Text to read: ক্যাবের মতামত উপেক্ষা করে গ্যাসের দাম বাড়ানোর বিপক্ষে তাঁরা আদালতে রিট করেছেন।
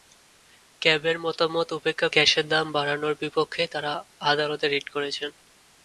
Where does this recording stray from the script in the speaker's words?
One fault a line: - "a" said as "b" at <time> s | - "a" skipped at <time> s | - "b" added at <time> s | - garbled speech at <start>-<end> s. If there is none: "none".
- "করে" skipped at 2.1 s